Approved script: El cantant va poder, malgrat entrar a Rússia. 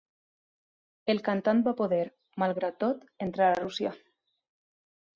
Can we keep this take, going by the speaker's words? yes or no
no